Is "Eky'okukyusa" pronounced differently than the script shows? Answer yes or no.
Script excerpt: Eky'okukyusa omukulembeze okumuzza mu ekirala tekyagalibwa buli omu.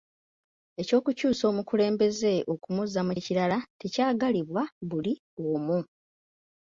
no